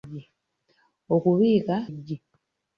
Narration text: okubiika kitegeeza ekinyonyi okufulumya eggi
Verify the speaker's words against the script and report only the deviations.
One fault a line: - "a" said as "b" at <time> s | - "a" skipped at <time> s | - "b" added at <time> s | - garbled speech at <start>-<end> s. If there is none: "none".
- "kitegeeza ekinyonyi okufulumya" skipped at 1.8 s